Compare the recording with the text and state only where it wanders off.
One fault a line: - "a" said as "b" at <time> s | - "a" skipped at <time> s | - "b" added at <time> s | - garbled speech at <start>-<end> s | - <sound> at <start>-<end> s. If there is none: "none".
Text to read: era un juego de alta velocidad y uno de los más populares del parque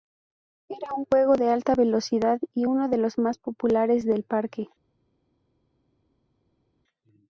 none